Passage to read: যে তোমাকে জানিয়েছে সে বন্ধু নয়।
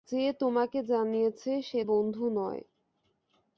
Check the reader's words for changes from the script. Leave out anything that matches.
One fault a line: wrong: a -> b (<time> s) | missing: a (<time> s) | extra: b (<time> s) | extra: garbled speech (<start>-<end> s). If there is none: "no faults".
no faults